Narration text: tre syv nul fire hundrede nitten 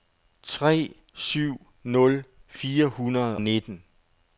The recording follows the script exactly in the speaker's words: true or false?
true